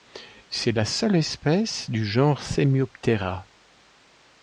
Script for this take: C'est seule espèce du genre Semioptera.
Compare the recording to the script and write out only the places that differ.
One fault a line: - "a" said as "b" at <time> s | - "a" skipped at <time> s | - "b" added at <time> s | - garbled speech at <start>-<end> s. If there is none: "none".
- "la" added at 0.7 s